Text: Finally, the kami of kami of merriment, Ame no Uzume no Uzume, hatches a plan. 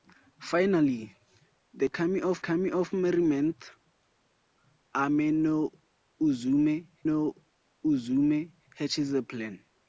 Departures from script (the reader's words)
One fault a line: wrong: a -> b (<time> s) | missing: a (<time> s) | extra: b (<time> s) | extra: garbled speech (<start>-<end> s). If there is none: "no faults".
no faults